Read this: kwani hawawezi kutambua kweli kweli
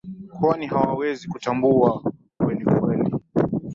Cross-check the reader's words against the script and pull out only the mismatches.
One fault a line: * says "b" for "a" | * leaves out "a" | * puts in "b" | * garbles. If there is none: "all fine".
all fine